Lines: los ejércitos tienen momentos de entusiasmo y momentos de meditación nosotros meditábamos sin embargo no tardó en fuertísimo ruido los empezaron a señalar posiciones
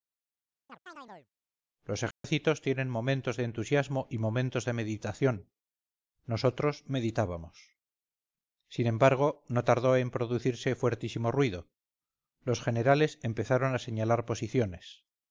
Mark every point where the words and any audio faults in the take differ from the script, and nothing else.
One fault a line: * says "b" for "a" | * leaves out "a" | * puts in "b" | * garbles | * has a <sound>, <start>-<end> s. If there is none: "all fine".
* has a chirp, 0.7-1.3 s
* has a dropout, 2.1-2.2 s
* puts in "producirse"
* puts in "generales"